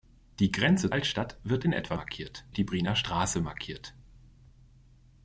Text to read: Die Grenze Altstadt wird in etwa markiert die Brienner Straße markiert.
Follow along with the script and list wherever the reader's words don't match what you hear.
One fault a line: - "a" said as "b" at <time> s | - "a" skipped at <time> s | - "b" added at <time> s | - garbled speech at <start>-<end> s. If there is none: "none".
none